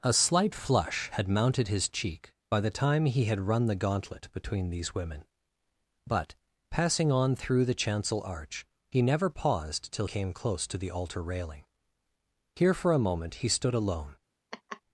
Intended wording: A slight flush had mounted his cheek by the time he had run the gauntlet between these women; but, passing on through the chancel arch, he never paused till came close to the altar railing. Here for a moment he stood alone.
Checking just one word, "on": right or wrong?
right